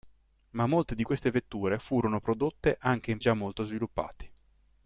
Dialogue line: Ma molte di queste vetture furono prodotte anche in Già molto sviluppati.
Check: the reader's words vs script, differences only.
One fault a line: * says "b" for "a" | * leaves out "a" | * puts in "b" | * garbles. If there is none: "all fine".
all fine